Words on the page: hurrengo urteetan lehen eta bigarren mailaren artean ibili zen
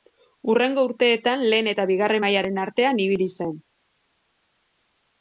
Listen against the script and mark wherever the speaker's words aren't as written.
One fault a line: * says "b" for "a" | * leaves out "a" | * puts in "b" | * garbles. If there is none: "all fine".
all fine